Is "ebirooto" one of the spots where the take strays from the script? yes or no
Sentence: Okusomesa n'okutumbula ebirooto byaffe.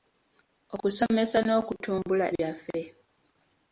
yes